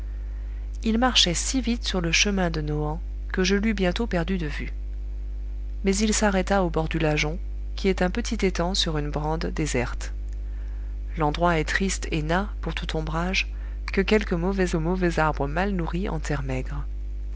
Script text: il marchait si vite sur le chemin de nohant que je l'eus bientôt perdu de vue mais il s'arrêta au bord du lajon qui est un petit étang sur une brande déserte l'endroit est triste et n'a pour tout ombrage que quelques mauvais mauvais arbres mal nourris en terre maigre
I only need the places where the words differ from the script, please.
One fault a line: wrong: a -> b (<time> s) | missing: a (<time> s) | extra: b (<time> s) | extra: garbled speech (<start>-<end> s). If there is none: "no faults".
no faults